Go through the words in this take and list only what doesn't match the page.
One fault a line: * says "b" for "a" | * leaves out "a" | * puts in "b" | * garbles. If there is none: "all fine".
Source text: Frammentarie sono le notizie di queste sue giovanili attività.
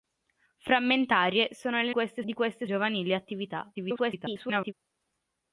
* says "queste" for "notizie"
* leaves out "sue"
* garbles